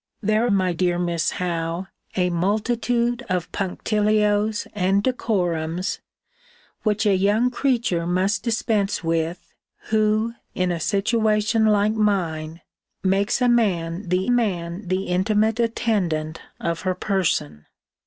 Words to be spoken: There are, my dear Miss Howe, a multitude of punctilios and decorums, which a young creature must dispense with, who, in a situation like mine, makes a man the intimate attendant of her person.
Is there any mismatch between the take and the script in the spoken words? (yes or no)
yes